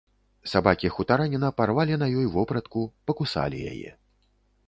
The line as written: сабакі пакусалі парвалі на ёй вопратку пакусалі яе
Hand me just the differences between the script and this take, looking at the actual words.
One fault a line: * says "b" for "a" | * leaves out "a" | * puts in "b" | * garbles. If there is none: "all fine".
* says "хутараніна" for "пакусалі"